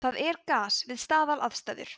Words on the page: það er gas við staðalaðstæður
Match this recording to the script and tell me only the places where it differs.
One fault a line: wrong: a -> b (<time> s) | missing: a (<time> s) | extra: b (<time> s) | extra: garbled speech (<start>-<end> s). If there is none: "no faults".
no faults